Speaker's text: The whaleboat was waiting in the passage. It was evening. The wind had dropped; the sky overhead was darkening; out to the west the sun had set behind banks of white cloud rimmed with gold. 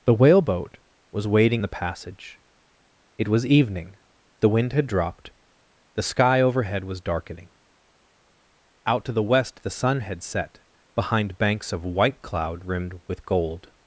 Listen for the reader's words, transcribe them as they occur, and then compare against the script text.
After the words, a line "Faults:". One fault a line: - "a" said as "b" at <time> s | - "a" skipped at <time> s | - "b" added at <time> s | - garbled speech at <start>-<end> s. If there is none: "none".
The whaleboat was waiting the passage. It was evening. The wind had dropped; the sky overhead was darkening; out to the west the sun had set behind banks of white cloud rimmed with gold.
Faults:
- "in" skipped at 1.6 s